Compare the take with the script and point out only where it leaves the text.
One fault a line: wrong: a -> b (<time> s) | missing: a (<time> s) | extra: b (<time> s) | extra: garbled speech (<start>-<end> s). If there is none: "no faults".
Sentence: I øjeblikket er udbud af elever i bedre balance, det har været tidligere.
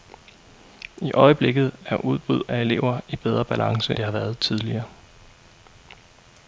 no faults